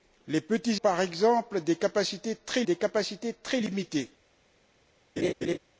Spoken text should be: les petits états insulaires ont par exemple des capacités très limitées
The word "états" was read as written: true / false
false